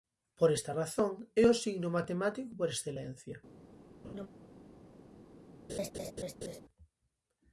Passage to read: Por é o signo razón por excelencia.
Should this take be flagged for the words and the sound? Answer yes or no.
yes